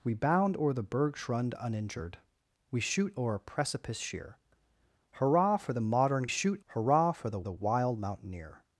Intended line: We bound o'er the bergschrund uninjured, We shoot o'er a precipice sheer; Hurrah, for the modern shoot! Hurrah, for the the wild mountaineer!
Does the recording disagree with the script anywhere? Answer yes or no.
no